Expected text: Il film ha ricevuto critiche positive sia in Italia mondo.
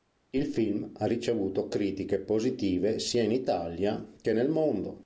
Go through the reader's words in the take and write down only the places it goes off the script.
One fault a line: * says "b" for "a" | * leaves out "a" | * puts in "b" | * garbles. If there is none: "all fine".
* puts in "che nel"